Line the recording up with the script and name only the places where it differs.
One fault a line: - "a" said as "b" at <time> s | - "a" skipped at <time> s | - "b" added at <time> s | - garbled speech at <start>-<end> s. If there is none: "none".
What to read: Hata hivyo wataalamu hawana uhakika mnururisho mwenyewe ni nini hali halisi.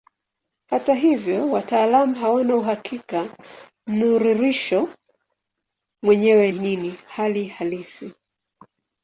- "ni" skipped at 6.5 s